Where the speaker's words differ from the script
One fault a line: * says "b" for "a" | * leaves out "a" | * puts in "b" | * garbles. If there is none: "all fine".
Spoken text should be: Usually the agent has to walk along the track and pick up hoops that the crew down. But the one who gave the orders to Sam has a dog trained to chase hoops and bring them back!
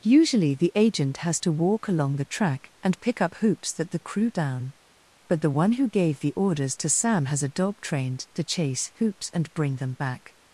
all fine